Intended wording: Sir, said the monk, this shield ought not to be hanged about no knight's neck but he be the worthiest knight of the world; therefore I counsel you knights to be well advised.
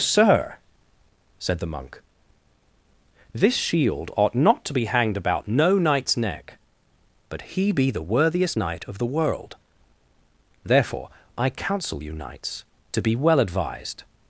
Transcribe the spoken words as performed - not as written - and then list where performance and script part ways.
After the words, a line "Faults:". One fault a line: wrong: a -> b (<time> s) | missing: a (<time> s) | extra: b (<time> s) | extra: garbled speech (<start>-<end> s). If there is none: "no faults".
Sir, said the monk, this shield ought not to be hanged about no knight's neck but he be the worthiest knight of the world; therefore I counsel you knights to be well advised.
Faults:
no faults